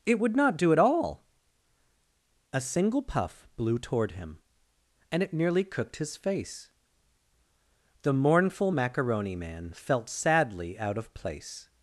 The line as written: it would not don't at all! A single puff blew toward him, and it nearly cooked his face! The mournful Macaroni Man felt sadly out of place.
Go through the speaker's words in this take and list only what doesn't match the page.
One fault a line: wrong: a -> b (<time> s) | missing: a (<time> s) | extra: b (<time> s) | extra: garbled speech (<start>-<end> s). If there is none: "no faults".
wrong: don't -> do (0.6 s)